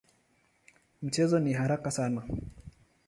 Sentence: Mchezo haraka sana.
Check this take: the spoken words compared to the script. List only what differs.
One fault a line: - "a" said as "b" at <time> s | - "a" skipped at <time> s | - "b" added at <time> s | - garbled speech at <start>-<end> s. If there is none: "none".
- "ni" added at 1.4 s